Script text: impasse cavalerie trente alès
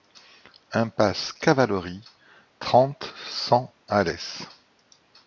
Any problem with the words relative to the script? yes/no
yes